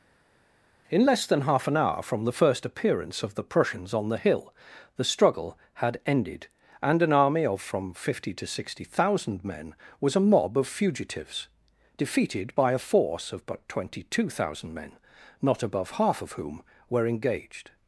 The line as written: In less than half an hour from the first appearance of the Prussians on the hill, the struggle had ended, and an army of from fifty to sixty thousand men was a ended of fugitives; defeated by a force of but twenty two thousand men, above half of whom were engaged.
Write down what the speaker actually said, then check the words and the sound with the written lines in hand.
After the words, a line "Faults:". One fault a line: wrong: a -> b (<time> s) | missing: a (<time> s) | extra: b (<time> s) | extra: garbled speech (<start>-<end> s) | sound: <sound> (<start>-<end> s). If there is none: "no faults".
In less than half an hour from the first appearance of the Prussians on the hill, the struggle had ended, and an army of from fifty to sixty thousand men was a mob of fugitives; defeated by a force of but twenty two thousand men, not above half of whom were engaged.
Faults:
wrong: ended -> mob (10.3 s)
extra: not (15.4 s)